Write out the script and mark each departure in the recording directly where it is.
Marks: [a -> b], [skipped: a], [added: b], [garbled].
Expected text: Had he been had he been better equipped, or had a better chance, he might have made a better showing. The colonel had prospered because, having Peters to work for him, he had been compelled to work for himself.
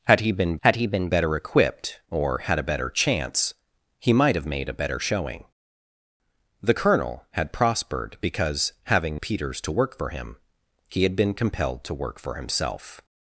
Had he been had he been better equipped, or had a better chance, he might have made a better showing. The colonel had prospered because, having Peters to work for him, he had been compelled to work for himself.